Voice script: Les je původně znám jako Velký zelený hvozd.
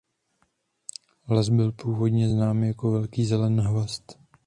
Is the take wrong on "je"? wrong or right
wrong